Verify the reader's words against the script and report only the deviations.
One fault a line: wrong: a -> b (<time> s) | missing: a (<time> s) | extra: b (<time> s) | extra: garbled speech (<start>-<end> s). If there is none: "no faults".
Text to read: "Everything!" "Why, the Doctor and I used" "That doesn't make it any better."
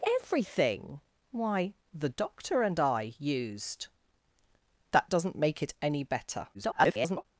extra: garbled speech (6.5-7.3 s)